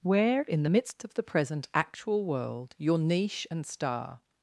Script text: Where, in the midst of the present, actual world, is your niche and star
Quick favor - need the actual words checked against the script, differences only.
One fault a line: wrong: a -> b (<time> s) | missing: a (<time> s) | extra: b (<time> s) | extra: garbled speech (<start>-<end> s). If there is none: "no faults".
missing: is (2.7 s)